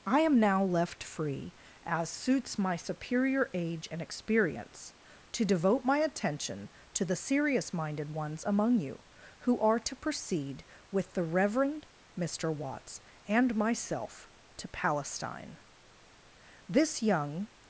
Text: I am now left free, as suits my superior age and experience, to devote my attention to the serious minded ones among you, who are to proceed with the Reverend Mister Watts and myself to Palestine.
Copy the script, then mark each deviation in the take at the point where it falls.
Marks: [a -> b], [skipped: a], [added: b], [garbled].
I am now left free, as suits my superior age and experience, to devote my attention to the serious minded ones among you, who are to proceed with the Reverend Mister Watts and myself to Palestine. [added: This young]